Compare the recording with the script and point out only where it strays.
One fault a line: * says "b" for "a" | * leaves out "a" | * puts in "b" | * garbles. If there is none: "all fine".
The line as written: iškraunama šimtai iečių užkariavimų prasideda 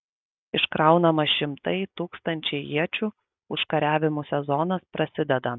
* puts in "tūkstančiai"
* puts in "sezonas"